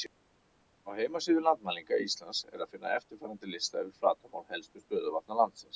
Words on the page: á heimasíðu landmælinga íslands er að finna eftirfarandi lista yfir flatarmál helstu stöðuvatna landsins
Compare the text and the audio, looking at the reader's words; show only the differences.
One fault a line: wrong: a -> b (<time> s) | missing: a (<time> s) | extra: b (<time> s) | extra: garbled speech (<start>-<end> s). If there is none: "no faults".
no faults